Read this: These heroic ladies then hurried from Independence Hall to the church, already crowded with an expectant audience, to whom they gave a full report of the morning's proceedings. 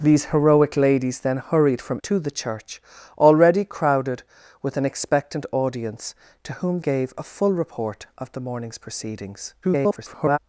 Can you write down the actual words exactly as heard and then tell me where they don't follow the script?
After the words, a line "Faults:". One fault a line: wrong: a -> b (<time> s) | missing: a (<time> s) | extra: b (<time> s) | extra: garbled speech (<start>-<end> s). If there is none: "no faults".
These heroic ladies then hurried from To the church, already crowded with an expectant audience, to whom gave a full report of the morning's proceedings. [garbled]
Faults:
missing: Independence Hall (2.0 s)
missing: they (6.8 s)
extra: garbled speech (9.6-10.4 s)